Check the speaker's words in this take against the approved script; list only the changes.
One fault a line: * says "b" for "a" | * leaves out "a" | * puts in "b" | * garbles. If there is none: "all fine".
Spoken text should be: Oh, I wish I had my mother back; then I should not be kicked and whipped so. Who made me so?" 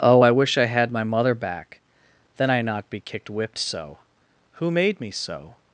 * leaves out "should"
* leaves out "and"